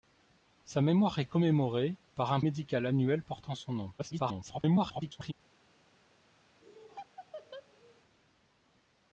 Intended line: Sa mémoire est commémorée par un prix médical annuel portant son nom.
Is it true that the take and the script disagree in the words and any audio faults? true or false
true